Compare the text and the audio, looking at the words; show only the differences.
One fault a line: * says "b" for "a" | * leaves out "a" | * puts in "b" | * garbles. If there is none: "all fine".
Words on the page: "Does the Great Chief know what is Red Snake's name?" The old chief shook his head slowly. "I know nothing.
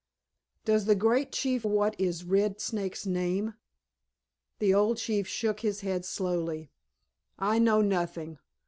* leaves out "know"